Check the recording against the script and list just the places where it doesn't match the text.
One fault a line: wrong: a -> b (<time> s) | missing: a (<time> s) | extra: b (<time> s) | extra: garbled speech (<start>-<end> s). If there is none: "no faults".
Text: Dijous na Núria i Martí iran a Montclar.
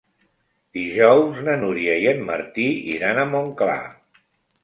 extra: en (2.1 s)